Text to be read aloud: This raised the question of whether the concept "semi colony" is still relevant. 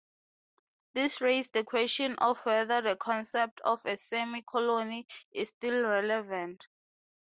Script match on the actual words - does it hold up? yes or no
no